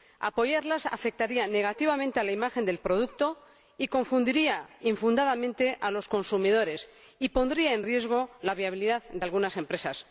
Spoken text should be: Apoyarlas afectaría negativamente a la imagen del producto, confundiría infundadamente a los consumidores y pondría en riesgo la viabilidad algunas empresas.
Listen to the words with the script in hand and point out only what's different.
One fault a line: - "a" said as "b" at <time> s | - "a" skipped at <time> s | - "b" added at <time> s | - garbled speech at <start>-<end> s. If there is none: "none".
- "de" added at 9.1 s